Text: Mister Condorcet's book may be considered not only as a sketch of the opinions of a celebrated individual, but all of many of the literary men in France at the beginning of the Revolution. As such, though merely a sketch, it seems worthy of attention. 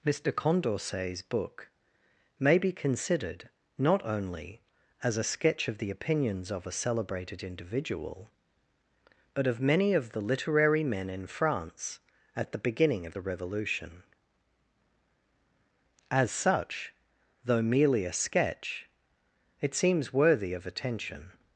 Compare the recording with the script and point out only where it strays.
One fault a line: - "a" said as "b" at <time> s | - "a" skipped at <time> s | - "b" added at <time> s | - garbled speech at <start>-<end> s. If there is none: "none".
- "all" skipped at 9.4 s